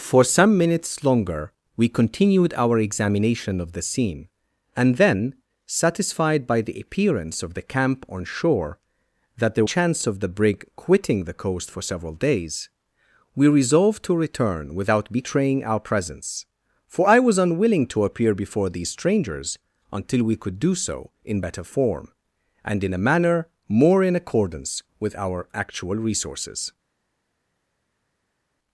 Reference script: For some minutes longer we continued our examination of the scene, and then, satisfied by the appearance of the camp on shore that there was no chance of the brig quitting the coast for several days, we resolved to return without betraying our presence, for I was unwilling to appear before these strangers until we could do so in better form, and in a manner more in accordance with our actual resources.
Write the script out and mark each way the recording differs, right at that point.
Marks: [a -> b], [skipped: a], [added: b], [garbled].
For some minutes longer we continued our examination of the scene, and then, satisfied by the appearance of the camp on shore that there [skipped: was no] chance of the brig quitting the coast for several days, we resolved to return without betraying our presence, for I was unwilling to appear before these strangers until we could do so in better form, and in a manner more in accordance with our actual resources.